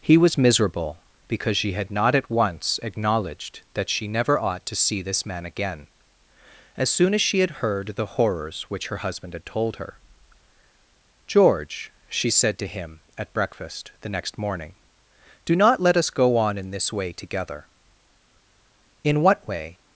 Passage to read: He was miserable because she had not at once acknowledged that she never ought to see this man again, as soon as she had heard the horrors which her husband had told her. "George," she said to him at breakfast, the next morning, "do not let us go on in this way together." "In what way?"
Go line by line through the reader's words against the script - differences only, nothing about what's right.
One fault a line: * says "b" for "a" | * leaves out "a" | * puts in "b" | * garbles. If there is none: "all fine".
all fine